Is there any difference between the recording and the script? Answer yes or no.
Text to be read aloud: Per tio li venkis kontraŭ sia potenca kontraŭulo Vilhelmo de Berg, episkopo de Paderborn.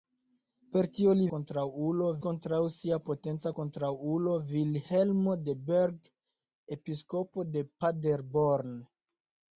yes